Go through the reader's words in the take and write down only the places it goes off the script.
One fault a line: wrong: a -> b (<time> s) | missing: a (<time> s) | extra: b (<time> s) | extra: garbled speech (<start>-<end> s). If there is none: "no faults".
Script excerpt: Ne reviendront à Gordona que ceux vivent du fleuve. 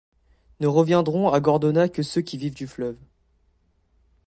extra: qui (2.2 s)